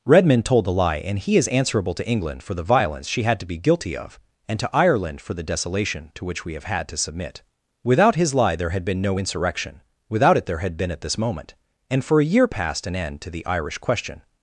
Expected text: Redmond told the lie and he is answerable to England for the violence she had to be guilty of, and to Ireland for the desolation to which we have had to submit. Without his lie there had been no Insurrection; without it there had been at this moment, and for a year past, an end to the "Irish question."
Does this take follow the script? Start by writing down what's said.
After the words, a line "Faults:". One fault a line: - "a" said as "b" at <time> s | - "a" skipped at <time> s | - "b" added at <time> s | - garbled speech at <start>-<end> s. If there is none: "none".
Redmond told the lie and he is answerable to England for the violence she had to be guilty of, and to Ireland for the desolation to which we have had to submit. Without his lie there had been no Insurrection; without it there had been at this moment, and for a year past, an end to the "Irish question."
Faults:
none